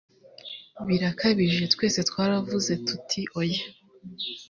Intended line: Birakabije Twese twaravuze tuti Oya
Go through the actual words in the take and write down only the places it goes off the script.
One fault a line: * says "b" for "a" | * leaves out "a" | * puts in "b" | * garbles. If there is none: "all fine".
all fine